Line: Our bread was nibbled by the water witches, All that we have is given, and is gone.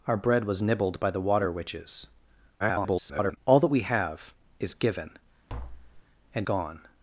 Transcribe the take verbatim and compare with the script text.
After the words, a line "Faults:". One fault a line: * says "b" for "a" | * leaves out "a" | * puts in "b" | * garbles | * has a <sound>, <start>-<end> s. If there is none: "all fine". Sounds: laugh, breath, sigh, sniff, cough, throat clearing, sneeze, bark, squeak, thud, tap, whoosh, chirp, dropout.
Our bread was nibbled by the water witches, [garbled] All that we have is given, and gone.
Faults:
* garbles
* has a tap, 5.5-6.0 s
* leaves out "is"